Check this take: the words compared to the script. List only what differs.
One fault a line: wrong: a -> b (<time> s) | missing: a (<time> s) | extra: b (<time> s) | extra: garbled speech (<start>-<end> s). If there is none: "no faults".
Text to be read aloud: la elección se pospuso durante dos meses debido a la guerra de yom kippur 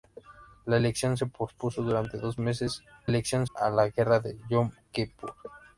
wrong: debido -> elección (3.1 s)